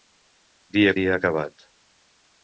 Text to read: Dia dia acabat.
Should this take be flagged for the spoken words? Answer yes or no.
no